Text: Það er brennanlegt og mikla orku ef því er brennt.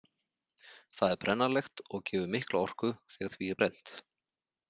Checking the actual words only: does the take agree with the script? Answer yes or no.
no